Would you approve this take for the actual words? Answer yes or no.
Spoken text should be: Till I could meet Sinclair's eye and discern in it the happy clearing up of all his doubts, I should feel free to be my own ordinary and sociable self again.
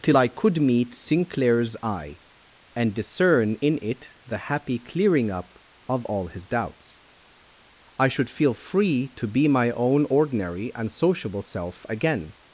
yes